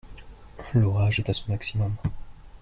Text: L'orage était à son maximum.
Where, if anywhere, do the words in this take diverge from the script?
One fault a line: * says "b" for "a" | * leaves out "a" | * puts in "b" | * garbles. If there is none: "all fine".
* says "est" for "était"